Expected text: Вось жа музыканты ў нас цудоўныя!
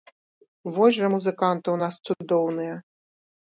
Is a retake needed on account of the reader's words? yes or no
no